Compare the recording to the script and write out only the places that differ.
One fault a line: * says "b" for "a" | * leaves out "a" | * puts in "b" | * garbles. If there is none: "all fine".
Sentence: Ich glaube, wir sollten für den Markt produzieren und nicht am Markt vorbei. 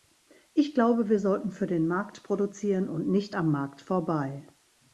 all fine